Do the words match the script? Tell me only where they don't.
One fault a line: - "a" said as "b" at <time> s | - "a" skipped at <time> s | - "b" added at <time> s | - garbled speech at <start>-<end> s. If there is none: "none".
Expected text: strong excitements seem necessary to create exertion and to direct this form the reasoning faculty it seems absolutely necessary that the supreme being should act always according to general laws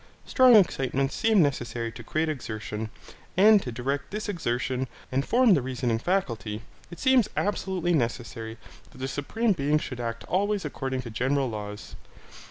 - "exertion and" added at 4.3 s